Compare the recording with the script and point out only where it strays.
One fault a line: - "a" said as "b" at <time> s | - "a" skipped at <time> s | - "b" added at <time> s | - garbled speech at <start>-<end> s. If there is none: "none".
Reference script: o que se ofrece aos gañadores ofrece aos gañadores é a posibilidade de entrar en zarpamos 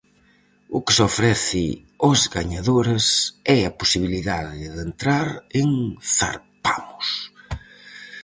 - "ofrece aos gañadores" skipped at 3.0 s